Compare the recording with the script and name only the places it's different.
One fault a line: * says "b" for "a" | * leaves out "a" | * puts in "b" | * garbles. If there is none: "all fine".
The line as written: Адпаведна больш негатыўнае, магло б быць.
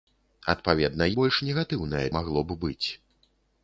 all fine